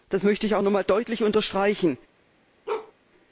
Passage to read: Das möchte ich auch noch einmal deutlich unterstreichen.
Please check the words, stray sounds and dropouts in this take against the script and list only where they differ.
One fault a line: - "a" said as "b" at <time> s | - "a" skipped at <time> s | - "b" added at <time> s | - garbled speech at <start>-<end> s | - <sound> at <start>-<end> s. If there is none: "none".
- bark at 2.7-2.9 s